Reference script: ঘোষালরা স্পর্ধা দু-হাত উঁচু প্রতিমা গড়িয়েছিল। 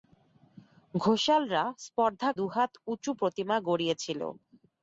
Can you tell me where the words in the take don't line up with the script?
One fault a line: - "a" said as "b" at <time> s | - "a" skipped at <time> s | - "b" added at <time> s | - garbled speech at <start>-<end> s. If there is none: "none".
none